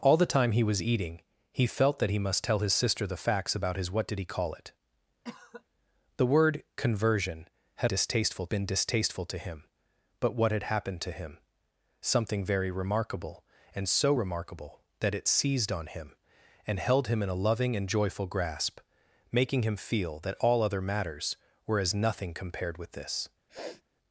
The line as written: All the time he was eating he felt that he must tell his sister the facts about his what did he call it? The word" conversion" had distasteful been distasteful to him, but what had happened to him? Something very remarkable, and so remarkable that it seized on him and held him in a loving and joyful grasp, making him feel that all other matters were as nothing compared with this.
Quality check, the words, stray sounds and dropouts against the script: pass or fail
fail